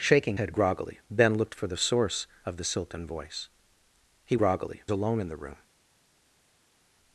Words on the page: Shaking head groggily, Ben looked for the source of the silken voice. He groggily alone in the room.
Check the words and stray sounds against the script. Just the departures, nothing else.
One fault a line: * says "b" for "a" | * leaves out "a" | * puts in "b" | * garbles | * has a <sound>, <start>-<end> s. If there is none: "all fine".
all fine